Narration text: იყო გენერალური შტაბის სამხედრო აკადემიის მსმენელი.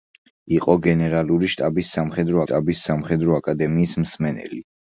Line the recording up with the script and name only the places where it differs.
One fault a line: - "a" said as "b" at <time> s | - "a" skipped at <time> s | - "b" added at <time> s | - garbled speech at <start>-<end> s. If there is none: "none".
- "შტაბის სამხედრო" added at 2.5 s